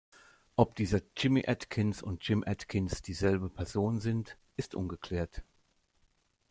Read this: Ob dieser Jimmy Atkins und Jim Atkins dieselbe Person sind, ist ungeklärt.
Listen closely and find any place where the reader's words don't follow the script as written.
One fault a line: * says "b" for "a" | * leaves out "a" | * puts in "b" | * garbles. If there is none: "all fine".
all fine